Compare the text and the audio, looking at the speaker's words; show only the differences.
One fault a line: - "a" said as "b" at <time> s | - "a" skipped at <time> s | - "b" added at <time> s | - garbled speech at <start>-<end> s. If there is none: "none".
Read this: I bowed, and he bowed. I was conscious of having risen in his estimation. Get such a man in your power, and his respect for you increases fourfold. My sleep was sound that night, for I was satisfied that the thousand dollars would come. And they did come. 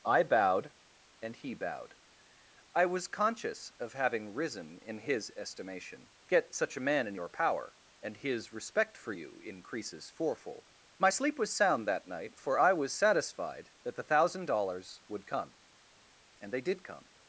none